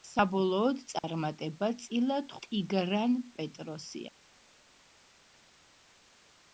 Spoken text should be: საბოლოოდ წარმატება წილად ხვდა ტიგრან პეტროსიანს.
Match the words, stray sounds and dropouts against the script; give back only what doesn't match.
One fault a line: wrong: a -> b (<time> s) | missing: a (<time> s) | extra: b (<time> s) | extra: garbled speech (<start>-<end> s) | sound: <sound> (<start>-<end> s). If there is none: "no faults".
sound: dropout (1.0-1.0 s)
missing: ხვდა (2.3 s)